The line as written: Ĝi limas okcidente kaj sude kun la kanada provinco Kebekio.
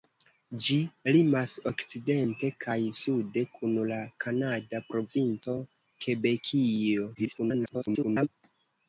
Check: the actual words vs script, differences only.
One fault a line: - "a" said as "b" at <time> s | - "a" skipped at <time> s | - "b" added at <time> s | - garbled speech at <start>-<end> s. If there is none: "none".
- garbled speech at 7.1-8.3 s